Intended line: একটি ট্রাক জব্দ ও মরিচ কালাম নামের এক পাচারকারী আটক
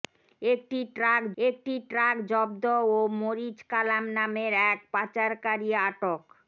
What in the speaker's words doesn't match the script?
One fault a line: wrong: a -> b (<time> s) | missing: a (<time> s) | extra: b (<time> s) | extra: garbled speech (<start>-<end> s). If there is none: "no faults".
extra: একটি ট্রাক (1.4 s)